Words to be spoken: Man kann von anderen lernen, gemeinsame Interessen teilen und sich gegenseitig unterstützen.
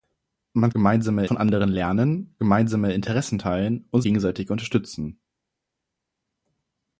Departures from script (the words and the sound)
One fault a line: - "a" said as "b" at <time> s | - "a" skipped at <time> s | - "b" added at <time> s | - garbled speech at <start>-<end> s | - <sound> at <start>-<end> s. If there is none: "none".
- "kann" said as "gemeinsame" at 0.7 s
- "sich" skipped at 4.0 s